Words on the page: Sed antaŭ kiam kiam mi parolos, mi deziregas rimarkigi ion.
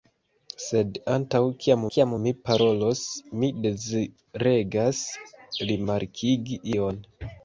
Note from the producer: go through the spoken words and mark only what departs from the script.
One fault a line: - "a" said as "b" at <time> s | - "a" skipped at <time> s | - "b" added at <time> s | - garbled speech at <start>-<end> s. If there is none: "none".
none